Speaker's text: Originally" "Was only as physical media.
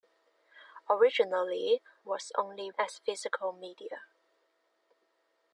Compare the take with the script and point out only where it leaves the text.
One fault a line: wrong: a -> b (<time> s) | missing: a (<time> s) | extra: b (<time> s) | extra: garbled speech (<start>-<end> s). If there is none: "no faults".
no faults